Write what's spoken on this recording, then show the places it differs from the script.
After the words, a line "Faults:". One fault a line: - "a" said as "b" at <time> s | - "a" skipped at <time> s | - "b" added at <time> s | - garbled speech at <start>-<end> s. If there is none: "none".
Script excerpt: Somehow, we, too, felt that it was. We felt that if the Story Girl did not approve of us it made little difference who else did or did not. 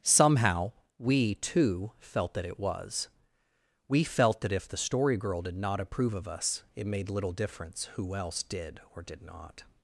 Somehow, we, too, felt that it was. We felt that if the Story Girl did not approve of us it made little difference who else did or did not.
Faults:
none